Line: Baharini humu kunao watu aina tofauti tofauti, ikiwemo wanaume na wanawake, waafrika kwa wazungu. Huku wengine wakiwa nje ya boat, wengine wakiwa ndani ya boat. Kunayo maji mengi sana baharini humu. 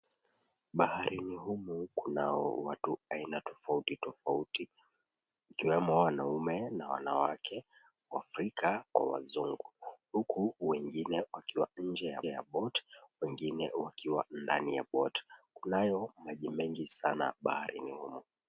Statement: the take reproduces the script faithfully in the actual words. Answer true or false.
false